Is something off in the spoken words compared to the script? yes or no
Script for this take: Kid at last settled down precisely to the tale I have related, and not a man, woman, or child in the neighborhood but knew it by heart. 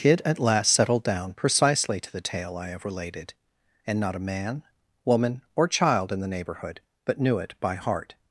no